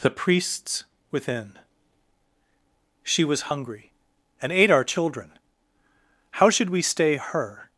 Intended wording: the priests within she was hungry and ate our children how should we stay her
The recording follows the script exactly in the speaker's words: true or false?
true